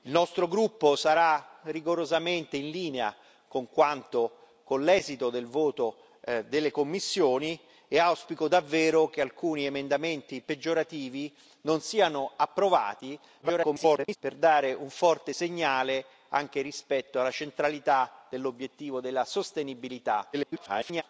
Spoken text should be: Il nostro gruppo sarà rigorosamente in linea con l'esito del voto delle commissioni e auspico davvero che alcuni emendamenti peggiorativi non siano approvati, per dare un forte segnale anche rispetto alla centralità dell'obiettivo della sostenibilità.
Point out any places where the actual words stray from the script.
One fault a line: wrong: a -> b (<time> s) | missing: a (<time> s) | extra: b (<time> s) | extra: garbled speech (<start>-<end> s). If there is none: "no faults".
extra: garbled speech (13.4-14.2 s)
extra: garbled speech (20.3-21.0 s)